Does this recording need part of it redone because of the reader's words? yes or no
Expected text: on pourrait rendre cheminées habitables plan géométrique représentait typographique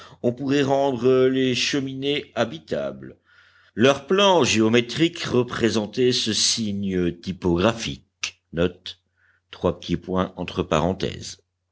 yes